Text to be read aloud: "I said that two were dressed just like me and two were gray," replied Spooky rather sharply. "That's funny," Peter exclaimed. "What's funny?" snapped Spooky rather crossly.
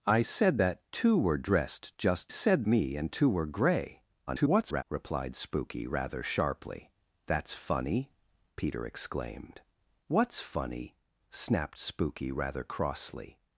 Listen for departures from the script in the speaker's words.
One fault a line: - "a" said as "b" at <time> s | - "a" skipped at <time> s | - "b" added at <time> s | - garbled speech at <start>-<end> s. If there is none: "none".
- "like" said as "said" at 2.3 s
- garbled speech at 4.3-4.8 s